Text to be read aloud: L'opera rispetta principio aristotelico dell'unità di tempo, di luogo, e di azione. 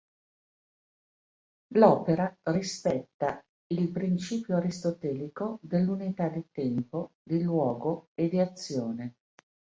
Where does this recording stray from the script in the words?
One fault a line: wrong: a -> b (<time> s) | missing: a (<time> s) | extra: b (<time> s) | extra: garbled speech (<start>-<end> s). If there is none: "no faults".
extra: il (3.7 s)